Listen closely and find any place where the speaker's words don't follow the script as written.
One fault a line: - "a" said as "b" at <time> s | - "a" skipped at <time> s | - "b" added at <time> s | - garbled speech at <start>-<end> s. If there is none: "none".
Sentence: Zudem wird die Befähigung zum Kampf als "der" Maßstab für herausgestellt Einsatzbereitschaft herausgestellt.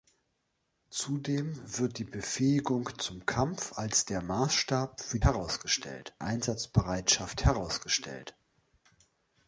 none